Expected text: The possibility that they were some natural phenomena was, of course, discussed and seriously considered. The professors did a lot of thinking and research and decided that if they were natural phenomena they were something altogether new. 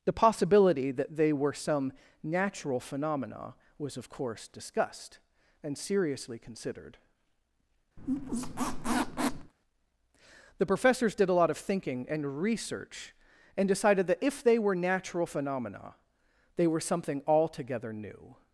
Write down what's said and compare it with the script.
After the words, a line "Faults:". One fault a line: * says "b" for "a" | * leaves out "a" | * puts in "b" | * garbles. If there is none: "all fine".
The possibility that they were some natural phenomena was, of course, discussed and seriously considered. The professors did a lot of thinking and research and decided that if they were natural phenomena they were something altogether new.
Faults:
all fine